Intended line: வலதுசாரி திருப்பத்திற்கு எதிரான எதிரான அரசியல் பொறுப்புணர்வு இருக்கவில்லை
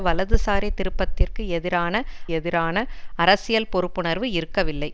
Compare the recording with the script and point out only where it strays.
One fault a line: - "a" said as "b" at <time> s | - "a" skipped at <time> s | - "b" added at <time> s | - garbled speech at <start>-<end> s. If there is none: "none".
none